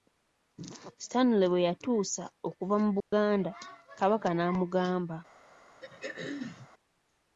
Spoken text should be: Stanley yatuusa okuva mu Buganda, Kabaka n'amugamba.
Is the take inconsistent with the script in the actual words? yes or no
yes